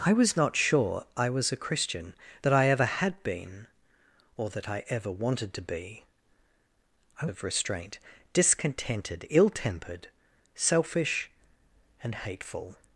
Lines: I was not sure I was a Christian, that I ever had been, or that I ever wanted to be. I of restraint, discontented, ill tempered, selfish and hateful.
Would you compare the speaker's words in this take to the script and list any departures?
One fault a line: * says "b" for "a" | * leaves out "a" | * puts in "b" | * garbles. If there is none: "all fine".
all fine